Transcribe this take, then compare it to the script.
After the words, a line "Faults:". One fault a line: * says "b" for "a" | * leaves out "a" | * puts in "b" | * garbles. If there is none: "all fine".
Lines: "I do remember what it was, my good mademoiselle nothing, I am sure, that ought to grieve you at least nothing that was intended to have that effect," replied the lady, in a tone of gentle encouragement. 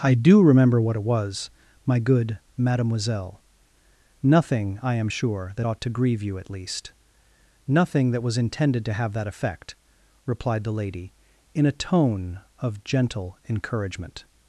"I do remember what it was, my good mademoiselle nothing, I am sure, that ought to grieve you at least nothing that was intended to have that effect," replied the lady, in a tone of gentle encouragement.
Faults:
all fine